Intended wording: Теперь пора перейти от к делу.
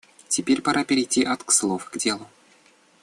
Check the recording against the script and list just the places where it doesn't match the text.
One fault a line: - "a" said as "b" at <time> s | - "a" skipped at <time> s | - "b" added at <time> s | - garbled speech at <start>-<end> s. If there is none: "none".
- "слов" added at 1.5 s